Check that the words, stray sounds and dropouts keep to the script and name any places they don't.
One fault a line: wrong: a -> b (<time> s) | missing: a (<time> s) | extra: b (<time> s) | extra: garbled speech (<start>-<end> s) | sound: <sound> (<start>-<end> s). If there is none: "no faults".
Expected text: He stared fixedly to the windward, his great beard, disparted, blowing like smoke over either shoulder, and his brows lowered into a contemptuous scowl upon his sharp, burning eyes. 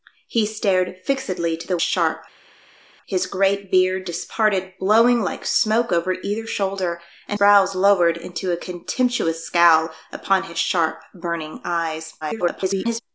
wrong: windward -> sharp (1.8 s)
missing: his (7.4 s)
extra: garbled speech (12.2-13.0 s)